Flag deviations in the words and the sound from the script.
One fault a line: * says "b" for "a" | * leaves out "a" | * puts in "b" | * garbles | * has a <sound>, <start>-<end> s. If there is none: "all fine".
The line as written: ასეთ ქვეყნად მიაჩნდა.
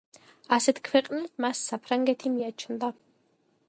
* puts in "მას საფრანგეთი"